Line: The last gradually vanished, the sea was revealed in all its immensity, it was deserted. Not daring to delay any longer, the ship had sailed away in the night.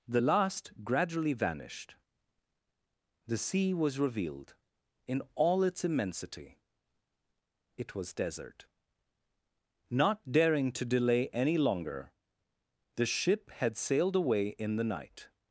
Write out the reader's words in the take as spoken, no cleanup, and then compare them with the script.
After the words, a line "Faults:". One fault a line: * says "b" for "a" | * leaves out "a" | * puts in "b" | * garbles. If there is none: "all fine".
The last gradually vanished, the sea was revealed in all its immensity, it was desert. Not daring to delay any longer, the ship had sailed away in the night.
Faults:
* says "desert" for "deserted"